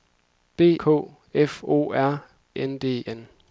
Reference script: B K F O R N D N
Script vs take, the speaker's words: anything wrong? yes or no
no